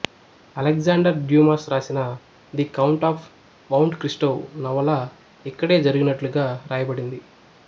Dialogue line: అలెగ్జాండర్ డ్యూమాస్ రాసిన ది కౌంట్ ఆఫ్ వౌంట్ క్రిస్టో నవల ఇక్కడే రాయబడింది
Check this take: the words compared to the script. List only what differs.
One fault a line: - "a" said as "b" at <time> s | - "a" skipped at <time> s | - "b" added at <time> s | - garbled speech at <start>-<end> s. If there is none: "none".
- "జరిగినట్లుగా" added at 5.8 s